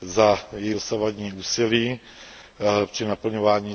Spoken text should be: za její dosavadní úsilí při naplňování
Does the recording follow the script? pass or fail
pass